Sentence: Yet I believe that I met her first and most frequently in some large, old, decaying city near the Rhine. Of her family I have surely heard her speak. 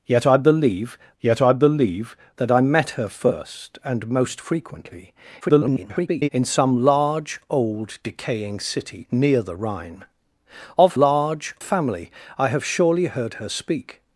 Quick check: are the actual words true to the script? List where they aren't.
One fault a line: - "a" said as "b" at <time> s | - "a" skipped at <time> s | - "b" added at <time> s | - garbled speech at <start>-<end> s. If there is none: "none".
- "yet I believe" added at 1.2 s
- garbled speech at 5.4-6.3 s
- "her" said as "large" at 11.0 s